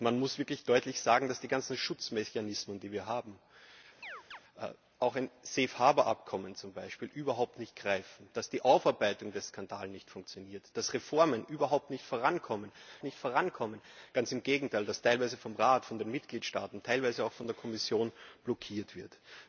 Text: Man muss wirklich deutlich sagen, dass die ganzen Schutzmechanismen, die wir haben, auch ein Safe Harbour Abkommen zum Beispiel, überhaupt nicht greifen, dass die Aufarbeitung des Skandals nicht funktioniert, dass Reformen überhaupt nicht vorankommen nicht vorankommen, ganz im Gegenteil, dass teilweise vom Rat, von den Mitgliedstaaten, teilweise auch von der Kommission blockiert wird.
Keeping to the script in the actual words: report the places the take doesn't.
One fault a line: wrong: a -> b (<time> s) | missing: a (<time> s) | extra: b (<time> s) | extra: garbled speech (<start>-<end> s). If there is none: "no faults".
no faults